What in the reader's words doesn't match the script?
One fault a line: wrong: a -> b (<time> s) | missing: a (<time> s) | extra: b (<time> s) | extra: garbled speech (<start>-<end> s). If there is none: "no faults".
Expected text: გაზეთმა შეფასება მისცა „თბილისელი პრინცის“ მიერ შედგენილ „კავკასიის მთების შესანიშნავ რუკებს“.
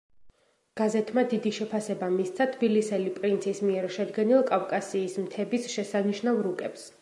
extra: დიდი (1.3 s)